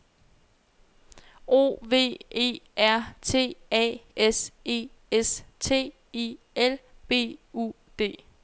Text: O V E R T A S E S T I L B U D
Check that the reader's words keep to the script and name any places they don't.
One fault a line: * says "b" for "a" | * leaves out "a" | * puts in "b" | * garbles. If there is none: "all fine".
all fine